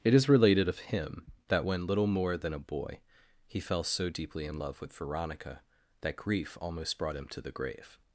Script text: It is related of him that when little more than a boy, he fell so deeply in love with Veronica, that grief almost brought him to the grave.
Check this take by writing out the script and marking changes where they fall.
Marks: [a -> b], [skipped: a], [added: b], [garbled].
It is related of him that when little more than a boy, he fell so deeply in love with Veronica, that grief almost brought him to the grave.